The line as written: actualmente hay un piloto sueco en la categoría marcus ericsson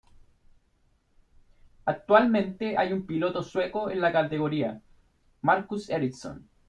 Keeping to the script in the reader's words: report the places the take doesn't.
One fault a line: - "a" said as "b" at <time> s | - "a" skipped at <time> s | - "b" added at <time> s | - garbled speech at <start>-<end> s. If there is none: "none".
none